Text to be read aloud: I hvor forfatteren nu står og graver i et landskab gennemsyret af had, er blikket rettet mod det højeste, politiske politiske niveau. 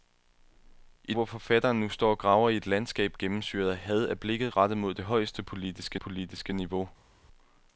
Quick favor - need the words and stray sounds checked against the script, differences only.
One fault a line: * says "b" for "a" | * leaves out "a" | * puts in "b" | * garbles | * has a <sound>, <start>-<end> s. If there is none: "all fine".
all fine